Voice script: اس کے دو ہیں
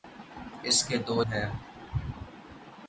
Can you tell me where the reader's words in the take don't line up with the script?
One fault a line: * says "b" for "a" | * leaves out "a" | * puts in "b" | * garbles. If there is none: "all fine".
all fine